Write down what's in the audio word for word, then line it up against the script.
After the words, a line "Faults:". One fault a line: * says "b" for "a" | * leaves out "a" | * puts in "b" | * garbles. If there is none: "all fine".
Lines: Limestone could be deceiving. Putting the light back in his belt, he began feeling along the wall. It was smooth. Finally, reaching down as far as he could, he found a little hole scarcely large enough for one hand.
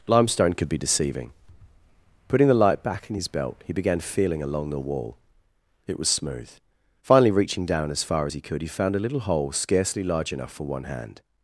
Limestone could be deceiving. Putting the light back in his belt, he began feeling along the wall. It was smooth. Finally, reaching down as far as he could, he found a little hole scarcely large enough for one hand.
Faults:
all fine